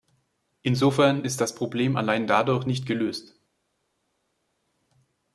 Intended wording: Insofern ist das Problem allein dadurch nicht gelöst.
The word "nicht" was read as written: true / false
true